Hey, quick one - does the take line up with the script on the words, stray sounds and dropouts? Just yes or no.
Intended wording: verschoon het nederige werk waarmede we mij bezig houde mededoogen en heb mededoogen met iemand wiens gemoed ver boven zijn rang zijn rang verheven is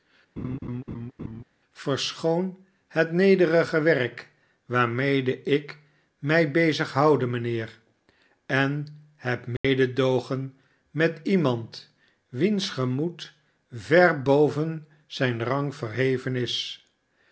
no